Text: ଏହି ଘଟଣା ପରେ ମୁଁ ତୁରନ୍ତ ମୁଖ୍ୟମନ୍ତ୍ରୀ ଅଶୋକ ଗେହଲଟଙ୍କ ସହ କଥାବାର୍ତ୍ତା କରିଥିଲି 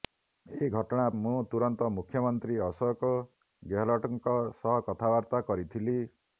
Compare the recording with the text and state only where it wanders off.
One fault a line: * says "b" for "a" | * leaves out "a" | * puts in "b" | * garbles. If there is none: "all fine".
* leaves out "ପରେ"